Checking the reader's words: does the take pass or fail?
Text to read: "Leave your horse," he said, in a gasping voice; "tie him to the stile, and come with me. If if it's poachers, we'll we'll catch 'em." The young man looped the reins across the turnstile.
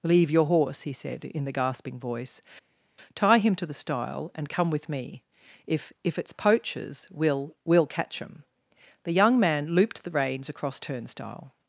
fail